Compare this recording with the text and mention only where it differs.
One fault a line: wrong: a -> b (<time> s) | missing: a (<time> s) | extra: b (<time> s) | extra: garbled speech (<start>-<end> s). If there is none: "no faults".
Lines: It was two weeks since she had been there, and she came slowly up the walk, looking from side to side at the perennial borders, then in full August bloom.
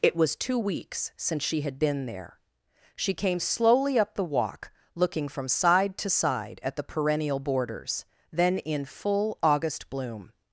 missing: and (2.4 s)